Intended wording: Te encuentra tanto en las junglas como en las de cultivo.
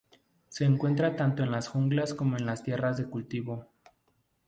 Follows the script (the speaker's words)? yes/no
no